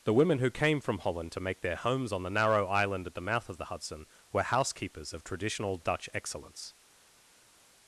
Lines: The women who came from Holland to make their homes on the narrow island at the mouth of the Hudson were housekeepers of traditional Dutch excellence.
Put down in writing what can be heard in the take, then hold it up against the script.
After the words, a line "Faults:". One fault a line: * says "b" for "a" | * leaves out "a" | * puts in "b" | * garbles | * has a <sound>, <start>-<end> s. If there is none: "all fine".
The women who came from Holland to make their homes on the narrow island at the mouth of the Hudson were housekeepers of traditional Dutch excellence.
Faults:
all fine